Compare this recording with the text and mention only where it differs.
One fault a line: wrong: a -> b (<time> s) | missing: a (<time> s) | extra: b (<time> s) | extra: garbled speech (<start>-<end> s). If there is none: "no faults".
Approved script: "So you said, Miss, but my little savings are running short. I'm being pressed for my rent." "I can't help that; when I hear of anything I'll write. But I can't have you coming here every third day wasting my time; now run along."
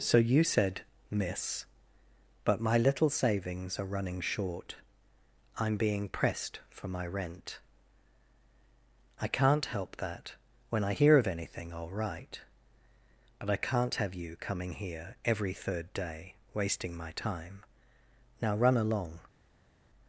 no faults